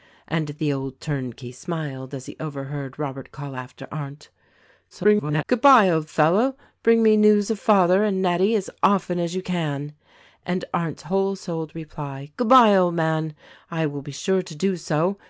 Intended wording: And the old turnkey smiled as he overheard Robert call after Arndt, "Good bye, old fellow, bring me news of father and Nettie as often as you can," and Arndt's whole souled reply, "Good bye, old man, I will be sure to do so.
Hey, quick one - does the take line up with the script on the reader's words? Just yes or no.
no